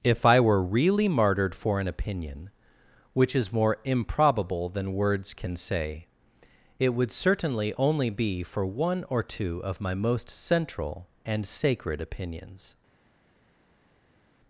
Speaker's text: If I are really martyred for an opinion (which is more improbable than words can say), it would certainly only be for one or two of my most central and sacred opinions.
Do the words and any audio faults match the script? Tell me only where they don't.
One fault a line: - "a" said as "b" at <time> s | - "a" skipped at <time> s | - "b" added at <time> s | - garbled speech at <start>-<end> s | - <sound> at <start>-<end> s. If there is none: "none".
- "are" said as "were" at 0.4 s